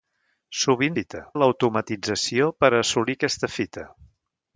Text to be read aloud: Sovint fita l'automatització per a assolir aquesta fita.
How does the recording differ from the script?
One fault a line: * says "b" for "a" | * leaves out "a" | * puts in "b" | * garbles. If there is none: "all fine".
all fine